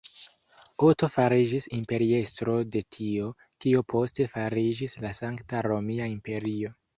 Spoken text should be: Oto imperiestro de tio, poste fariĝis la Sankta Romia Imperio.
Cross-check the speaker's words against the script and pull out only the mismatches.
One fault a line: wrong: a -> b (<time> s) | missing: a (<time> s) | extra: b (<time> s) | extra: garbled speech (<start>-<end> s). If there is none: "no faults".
extra: fariĝis (1.2 s)
extra: kio (3.6 s)